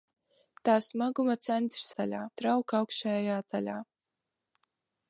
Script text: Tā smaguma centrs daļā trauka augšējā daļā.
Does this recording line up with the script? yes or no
yes